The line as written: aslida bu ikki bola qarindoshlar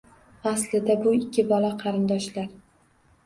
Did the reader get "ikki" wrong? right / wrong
right